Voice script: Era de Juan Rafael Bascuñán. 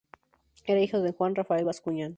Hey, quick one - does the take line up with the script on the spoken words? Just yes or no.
no